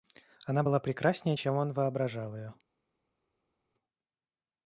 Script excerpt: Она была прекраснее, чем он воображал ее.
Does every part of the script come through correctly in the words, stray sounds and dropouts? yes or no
yes